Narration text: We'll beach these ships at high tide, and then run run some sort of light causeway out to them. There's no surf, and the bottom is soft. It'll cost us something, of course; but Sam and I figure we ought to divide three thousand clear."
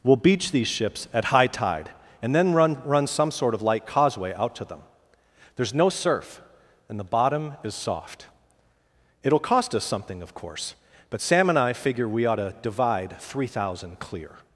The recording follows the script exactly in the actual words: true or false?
true